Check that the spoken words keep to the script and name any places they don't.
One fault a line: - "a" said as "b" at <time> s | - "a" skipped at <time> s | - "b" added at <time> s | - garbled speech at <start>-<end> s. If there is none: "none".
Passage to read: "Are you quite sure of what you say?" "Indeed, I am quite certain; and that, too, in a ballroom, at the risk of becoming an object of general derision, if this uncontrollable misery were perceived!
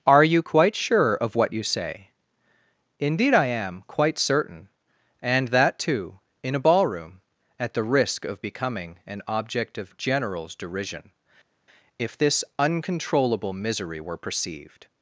- "general" said as "generals" at 10.0 s